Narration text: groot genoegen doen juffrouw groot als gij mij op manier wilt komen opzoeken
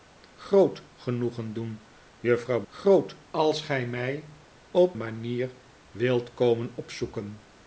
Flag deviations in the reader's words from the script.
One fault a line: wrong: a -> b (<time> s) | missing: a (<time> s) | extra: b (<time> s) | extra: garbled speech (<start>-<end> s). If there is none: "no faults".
no faults